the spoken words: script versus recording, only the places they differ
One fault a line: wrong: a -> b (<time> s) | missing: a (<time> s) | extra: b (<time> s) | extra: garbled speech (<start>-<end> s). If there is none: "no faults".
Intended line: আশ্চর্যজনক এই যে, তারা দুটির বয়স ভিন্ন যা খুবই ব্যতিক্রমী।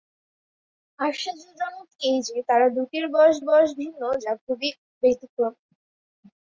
extra: বয়স (3.5 s)